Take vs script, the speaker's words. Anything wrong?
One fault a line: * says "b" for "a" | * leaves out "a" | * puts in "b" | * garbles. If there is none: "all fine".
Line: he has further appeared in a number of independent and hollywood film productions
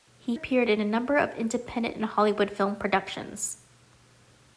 * leaves out "has further"